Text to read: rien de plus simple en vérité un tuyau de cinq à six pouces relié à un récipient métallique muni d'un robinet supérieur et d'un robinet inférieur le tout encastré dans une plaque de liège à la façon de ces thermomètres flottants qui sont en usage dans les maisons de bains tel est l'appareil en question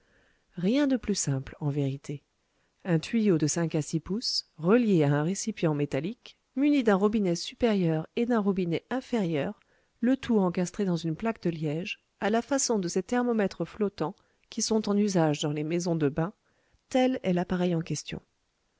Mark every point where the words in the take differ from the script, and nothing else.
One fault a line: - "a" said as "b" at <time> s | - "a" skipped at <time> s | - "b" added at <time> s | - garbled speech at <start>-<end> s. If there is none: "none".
none